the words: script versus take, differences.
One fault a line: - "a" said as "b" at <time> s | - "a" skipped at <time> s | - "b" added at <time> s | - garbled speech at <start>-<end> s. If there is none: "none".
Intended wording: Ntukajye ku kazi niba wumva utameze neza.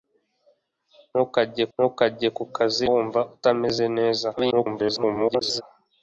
- "ntukajye" added at 1.7 s
- "niba" skipped at 2.8 s
- garbled speech at 4.4-5.6 s